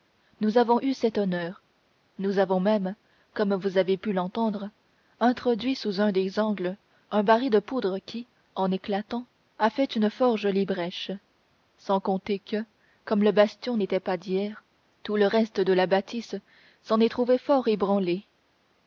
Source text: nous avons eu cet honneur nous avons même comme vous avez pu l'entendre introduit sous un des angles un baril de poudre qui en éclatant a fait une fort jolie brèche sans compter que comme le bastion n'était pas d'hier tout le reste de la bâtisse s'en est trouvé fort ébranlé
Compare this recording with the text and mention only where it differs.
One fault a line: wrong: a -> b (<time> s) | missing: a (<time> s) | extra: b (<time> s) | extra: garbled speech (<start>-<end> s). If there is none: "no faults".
no faults